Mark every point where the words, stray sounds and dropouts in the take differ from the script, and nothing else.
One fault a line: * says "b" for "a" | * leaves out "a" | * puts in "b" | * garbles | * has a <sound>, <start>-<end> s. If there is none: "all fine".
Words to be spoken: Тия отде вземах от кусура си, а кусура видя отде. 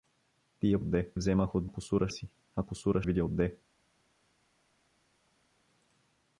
all fine